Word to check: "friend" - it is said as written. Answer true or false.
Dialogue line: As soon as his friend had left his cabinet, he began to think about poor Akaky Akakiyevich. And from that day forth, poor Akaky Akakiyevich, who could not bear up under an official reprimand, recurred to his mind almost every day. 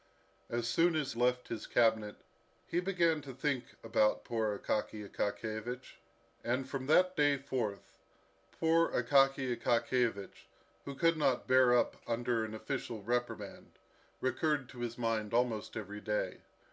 false